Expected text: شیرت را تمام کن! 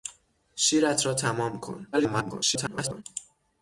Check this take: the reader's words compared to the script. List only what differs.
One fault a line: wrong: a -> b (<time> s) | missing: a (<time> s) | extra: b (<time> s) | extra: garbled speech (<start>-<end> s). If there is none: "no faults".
extra: garbled speech (1.9-3.0 s)